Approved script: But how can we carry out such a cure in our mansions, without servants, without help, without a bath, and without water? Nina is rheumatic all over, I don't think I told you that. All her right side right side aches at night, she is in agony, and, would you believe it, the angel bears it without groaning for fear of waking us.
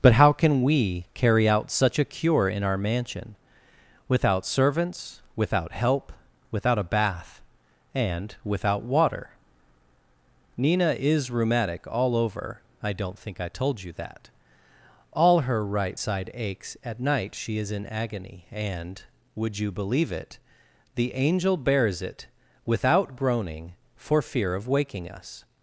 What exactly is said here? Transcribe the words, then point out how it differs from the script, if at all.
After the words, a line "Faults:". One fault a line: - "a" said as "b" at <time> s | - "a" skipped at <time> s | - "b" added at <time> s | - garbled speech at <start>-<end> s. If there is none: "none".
But how can we carry out such a cure in our mansion, without servants, without help, without a bath, and without water? Nina is rheumatic all over, I don't think I told you that. All her right side aches at night, she is in agony, and, would you believe it, the angel bears it without groaning for fear of waking us.
Faults:
- "mansions" said as "mansion" at 2.8 s
- "right side" skipped at 16.3 s